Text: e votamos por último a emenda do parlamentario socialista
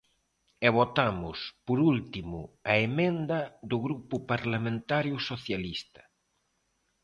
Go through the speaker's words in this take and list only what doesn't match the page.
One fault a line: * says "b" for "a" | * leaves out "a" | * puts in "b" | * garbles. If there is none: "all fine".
* puts in "grupo"